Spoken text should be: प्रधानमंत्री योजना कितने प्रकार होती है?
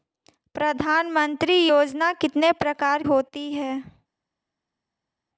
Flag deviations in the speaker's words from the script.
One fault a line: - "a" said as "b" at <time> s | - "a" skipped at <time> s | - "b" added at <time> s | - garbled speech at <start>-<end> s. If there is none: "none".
none